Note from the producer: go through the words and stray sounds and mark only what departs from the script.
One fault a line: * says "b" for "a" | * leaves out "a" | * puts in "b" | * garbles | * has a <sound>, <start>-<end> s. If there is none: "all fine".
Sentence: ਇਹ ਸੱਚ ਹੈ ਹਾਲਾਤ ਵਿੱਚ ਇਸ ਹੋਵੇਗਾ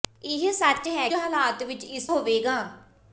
all fine